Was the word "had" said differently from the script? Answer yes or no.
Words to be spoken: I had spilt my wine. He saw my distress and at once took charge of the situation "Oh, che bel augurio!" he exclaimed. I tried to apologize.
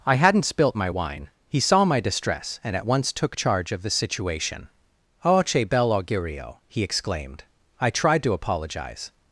yes